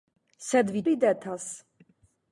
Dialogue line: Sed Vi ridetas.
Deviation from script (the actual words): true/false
false